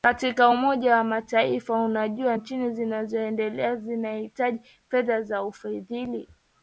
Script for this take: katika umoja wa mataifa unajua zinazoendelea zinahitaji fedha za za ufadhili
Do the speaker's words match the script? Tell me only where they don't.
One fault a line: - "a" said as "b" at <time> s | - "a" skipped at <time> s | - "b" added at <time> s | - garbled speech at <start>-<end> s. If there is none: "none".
- "nchi" added at 2.3 s
- "za" skipped at 5.4 s